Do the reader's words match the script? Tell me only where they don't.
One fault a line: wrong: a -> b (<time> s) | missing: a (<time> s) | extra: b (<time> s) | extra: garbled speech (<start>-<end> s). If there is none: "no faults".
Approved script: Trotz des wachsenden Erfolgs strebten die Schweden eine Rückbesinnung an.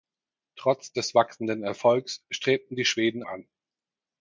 missing: eine Rückbesinnung (3.2 s)